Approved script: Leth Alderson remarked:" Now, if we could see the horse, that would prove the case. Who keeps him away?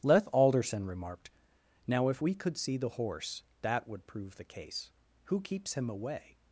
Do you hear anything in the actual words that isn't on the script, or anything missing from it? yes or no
no